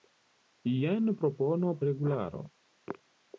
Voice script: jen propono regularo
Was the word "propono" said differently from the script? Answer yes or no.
no